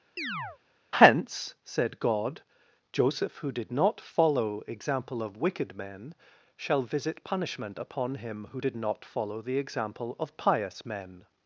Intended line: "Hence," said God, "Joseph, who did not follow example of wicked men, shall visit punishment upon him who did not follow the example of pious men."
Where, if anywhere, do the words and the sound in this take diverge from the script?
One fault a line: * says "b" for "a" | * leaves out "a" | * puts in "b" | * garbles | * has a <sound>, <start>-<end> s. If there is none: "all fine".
* has a chirp, 0.2-0.6 s